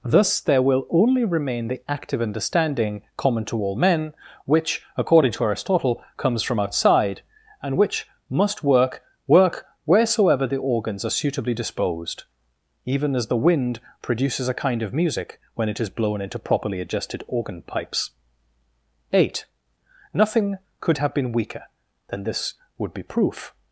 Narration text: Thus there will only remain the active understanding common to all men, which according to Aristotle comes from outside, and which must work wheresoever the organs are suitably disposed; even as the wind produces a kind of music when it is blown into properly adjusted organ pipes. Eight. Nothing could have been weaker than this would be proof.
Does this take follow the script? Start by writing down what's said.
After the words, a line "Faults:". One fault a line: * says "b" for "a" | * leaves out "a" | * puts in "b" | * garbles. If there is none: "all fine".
Thus there will only remain the active understanding common to all men, which according to Aristotle comes from outside, and which must work work wheresoever the organs are suitably disposed; even as the wind produces a kind of music when it is blown into properly adjusted organ pipes. Eight. Nothing could have been weaker than this would be proof.
Faults:
* puts in "work"